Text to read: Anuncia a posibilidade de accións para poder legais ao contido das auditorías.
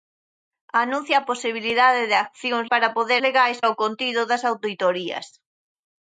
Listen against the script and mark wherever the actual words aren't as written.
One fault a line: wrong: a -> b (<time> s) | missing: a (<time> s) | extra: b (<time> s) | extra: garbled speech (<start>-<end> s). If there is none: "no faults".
no faults